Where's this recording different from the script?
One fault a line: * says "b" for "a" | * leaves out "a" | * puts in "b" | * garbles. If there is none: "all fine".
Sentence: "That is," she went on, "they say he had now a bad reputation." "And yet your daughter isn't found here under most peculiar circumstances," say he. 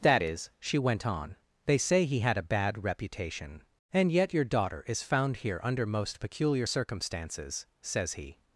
* leaves out "now"
* says "is" for "isn't"
* says "says" for "say"